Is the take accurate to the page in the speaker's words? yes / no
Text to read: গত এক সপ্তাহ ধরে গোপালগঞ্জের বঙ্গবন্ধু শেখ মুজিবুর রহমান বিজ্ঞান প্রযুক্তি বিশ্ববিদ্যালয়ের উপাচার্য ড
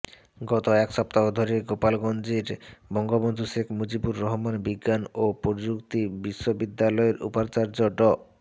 no